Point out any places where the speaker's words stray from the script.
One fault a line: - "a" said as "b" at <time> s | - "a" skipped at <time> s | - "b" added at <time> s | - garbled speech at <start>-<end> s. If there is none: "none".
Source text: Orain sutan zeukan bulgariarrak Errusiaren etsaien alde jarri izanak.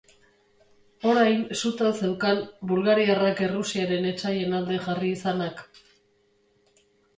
none